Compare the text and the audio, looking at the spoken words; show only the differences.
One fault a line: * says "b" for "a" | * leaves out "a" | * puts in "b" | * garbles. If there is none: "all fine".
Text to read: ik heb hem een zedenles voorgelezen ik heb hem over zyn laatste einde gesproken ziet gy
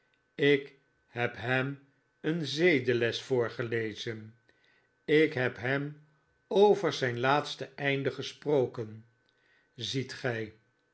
all fine